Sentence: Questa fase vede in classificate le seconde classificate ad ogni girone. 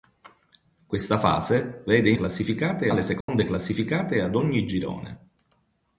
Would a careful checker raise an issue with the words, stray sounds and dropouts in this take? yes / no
yes